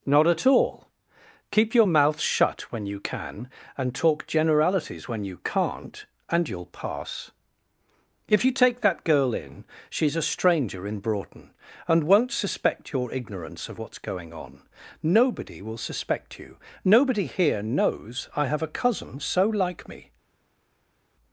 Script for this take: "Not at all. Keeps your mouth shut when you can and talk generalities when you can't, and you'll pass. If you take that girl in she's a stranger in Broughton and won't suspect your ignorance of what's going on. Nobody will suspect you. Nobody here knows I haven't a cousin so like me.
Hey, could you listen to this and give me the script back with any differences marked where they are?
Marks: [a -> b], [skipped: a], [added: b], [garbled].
"Not at all. [Keeps -> Keep] your mouth shut when you can and talk generalities when you can't, and you'll pass. If you take that girl in she's a stranger in Broughton and won't suspect your ignorance of what's going on. Nobody will suspect you. Nobody here knows I [haven't -> have] a cousin so like me.